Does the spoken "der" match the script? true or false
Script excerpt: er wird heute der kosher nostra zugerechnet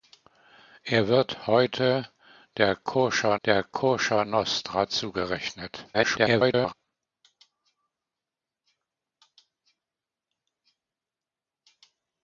true